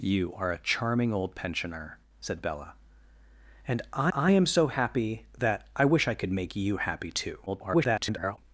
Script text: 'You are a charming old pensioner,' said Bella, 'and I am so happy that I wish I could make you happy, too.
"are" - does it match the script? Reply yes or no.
yes